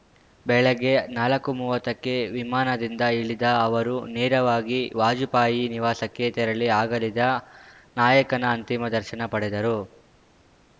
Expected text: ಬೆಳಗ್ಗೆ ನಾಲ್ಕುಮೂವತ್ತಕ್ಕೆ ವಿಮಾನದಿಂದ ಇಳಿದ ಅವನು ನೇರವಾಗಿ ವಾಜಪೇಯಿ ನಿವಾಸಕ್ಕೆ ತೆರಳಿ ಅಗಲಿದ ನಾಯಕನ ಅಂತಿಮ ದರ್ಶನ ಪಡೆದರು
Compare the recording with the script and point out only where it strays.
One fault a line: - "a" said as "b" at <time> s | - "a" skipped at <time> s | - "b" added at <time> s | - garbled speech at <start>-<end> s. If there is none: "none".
- "ಅವನು" said as "ಅವರು" at 3.6 s